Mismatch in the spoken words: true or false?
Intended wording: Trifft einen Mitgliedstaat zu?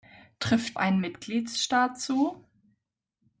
false